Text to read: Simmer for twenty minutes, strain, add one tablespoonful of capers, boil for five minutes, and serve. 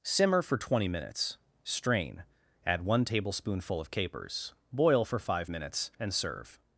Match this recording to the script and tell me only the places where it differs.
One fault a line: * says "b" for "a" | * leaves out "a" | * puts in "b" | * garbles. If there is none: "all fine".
all fine